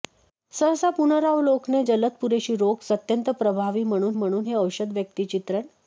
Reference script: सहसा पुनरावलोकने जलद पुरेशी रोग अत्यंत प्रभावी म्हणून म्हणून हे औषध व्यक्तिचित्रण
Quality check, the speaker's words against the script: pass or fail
pass